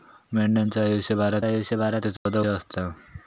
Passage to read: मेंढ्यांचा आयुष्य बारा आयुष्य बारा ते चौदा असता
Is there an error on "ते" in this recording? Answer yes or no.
no